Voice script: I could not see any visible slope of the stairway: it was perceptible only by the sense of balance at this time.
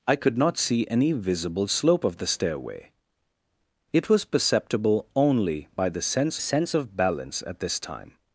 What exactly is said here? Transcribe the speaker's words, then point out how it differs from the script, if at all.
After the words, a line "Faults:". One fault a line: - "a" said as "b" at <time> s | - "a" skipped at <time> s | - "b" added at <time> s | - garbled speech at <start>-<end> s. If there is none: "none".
I could not see any visible slope of the stairway: it was perceptible only by the sense sense of balance at this time.
Faults:
- "sense" added at 6.4 s